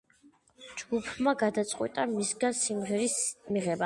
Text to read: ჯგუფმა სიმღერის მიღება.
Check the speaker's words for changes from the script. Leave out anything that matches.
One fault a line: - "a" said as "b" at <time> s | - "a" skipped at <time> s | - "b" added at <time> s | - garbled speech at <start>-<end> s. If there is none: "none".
- "გადაწყვიტა მისგან" added at 1.4 s